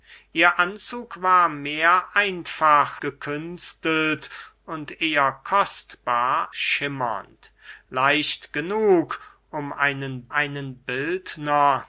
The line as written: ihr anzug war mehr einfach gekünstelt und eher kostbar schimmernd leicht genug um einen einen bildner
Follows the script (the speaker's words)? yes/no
yes